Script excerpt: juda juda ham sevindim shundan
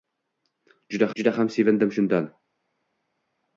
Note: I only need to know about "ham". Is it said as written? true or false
true